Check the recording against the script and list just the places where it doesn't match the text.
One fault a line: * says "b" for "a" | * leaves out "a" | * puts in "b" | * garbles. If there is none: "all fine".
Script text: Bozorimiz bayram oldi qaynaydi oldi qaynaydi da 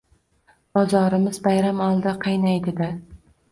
* leaves out "oldi qaynaydi"